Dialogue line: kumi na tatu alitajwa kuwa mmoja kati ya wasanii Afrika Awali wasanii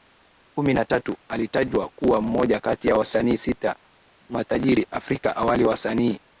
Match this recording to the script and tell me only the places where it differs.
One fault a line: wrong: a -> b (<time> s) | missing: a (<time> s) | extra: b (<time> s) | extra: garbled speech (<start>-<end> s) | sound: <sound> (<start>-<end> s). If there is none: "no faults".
extra: sita matajiri (3.4 s)